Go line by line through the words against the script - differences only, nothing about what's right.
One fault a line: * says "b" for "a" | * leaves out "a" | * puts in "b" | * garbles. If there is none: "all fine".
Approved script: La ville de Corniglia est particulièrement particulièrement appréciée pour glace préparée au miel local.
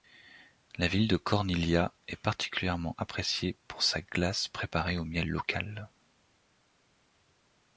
* leaves out "particulièrement"
* puts in "sa"